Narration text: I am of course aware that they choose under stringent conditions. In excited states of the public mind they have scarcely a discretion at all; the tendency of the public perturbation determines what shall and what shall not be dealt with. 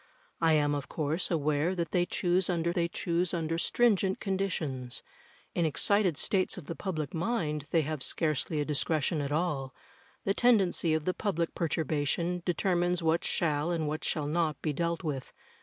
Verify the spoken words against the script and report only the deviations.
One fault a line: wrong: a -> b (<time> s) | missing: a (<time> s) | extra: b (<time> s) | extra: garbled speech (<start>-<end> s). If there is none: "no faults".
extra: they choose under (2.7 s)